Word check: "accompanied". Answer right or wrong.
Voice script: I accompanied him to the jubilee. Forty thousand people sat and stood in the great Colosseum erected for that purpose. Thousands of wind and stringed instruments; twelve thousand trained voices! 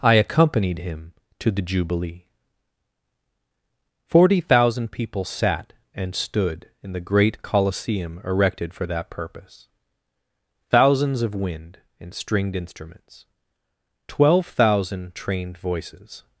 right